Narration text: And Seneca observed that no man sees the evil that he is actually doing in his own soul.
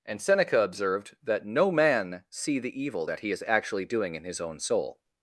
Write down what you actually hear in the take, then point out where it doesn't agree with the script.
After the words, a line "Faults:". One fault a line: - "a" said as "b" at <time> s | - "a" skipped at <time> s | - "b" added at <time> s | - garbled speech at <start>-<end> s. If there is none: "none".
And Seneca observed that no man see the evil that he is actually doing in his own soul.
Faults:
- "sees" said as "see" at 2.3 s